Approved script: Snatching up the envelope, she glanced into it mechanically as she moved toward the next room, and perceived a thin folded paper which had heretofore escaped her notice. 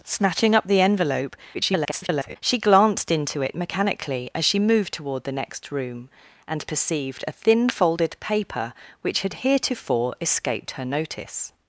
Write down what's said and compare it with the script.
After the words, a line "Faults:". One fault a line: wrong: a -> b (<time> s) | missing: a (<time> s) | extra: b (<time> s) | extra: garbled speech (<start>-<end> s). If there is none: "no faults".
Snatching up the envelope, [garbled] she glanced into it mechanically as she moved toward the next room, and perceived a thin folded paper which had heretofore escaped her notice.
Faults:
extra: garbled speech (1.5-2.4 s)